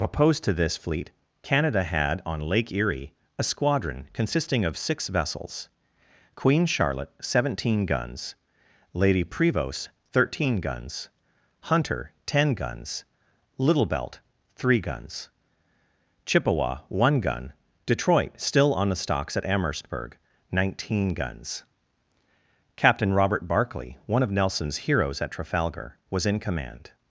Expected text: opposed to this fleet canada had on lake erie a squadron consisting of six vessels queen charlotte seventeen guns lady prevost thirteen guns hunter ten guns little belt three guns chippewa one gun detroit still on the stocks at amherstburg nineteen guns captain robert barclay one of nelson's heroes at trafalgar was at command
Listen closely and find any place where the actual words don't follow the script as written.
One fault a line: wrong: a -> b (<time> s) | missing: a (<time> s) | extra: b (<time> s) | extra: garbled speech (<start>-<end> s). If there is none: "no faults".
wrong: at -> in (26.2 s)